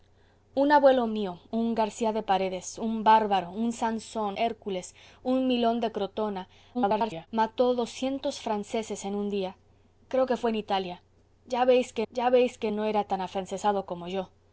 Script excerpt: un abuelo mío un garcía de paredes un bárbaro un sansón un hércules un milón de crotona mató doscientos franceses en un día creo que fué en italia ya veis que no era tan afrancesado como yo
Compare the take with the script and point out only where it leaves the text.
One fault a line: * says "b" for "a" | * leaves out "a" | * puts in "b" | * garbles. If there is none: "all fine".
* leaves out "un"
* garbles
* puts in "ya veis que"